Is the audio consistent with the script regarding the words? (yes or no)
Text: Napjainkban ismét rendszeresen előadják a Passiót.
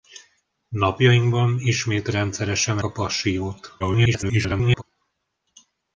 no